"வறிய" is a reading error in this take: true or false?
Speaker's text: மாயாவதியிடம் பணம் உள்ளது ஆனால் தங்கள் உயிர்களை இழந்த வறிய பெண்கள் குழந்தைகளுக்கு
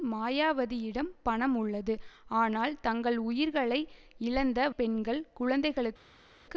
true